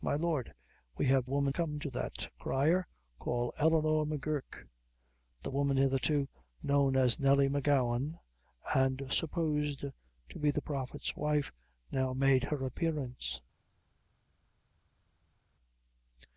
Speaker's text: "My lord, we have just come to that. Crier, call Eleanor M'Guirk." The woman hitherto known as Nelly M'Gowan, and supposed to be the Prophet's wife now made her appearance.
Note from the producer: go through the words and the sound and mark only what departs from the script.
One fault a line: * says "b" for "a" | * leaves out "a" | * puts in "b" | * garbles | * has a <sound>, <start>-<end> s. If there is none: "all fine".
* says "woman" for "just"